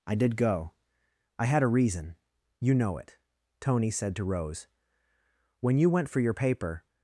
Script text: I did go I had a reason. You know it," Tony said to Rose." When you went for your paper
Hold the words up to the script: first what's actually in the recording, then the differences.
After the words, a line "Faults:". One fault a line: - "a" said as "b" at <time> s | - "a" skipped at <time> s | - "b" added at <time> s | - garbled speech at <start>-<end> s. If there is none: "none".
I did go I had a reason. You know it," Tony said to Rose." When you went for your paper
Faults:
none